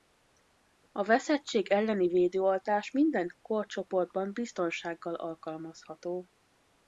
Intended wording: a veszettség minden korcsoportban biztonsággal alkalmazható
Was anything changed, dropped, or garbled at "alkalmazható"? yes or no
no